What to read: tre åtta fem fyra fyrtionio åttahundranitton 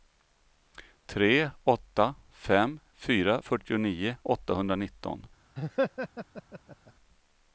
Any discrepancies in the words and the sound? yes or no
yes